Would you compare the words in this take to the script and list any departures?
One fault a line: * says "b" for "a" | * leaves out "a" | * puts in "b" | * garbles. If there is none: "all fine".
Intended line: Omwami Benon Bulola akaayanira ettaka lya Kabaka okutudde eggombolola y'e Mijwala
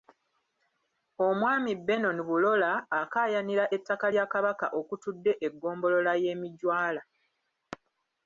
all fine